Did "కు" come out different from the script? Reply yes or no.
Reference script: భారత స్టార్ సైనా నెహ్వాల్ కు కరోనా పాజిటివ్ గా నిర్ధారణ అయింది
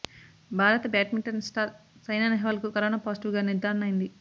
no